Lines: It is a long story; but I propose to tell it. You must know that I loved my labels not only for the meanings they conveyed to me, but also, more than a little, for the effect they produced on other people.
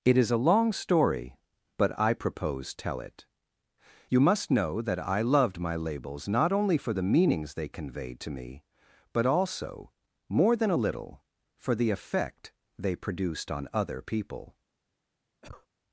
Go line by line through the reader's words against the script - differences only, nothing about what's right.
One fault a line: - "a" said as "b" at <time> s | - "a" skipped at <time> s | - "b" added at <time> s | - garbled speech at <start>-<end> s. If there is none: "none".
- "to" skipped at 2.7 s